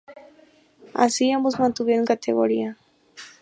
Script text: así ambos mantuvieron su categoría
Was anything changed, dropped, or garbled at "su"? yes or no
yes